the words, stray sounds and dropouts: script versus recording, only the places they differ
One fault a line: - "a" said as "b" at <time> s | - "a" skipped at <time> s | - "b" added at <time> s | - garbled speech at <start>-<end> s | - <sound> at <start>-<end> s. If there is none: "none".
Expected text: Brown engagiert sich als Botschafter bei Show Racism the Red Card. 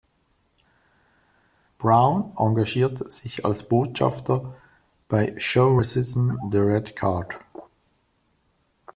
none